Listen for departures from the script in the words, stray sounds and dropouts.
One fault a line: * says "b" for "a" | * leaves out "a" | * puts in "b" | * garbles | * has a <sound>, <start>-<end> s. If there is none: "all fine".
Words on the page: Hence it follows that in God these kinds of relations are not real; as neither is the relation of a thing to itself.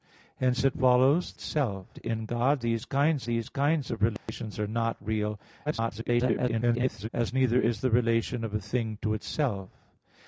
* says "itself" for "that"
* puts in "these kinds"
* has a dropout, 4.2-4.3 s
* garbles